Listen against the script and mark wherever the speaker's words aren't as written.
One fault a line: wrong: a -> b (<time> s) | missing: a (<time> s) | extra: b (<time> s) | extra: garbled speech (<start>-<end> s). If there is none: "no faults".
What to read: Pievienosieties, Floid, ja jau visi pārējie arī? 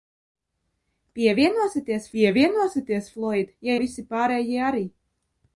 extra: pievienosieties (2.1 s)
missing: jau (3.7 s)